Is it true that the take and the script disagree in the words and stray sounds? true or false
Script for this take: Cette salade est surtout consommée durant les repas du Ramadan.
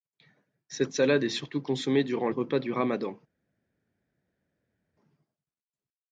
true